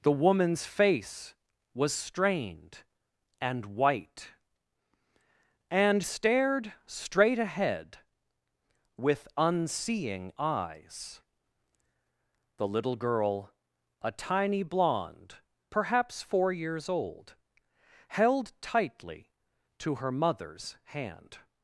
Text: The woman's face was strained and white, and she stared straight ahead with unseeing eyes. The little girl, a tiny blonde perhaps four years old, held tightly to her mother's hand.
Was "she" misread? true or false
true